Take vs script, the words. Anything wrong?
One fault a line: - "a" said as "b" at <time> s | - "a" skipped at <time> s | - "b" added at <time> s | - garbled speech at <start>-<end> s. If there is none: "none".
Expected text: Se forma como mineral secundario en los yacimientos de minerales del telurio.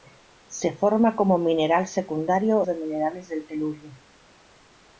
- "en los yacimientos" skipped at 2.6 s